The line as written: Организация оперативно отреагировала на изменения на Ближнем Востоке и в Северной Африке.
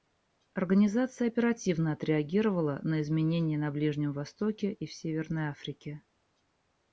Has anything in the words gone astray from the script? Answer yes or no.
no